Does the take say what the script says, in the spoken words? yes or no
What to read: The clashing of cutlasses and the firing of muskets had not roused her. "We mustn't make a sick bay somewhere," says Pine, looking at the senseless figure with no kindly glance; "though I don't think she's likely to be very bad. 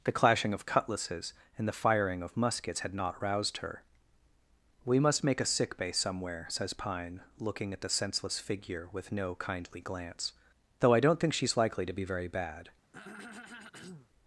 no